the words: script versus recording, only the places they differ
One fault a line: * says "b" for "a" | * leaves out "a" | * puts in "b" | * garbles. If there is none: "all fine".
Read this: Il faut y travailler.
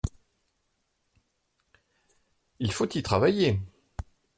all fine